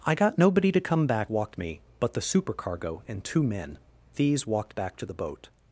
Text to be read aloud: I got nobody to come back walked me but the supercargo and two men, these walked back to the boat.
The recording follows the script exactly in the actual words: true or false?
true